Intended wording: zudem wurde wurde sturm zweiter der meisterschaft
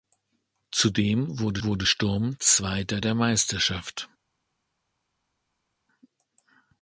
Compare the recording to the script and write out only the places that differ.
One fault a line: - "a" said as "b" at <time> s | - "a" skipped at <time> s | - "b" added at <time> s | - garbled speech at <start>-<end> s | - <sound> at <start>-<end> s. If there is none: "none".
none